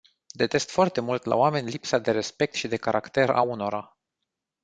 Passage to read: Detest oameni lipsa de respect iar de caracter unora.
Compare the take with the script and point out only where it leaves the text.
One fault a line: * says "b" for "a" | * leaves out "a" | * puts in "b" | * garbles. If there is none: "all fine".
* puts in "foarte mult la"
* says "și" for "iar"
* puts in "a"